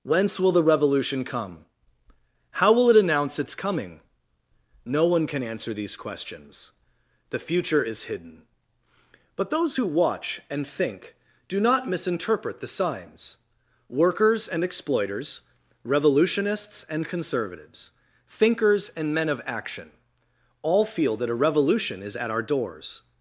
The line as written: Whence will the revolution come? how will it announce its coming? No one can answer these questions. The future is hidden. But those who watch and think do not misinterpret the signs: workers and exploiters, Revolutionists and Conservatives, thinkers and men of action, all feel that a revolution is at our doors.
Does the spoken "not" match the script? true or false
true